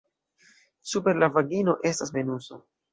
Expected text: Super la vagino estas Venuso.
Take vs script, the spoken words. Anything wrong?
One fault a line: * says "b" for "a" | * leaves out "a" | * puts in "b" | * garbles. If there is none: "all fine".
all fine